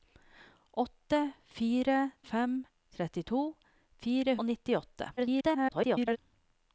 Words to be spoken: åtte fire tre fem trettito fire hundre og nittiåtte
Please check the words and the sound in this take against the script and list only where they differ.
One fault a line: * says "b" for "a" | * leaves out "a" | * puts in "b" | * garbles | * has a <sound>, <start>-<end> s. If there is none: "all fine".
* leaves out "tre"
* leaves out "hundre"
* garbles